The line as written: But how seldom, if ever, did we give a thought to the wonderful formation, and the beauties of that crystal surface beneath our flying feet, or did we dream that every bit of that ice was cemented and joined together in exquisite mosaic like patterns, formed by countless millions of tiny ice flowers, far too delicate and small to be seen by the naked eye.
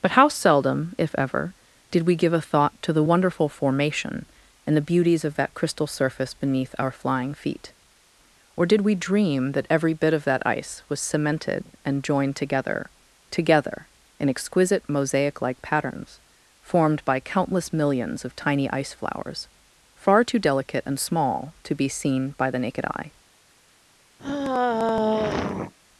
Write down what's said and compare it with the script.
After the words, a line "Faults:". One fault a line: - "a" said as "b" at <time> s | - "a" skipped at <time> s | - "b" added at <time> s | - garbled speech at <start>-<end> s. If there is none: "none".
But how seldom, if ever, did we give a thought to the wonderful formation, and the beauties of that crystal surface beneath our flying feet, or did we dream that every bit of that ice was cemented and joined together together in exquisite mosaic like patterns, formed by countless millions of tiny ice flowers, far too delicate and small to be seen by the naked eye.
Faults:
- "together" added at 13.3 s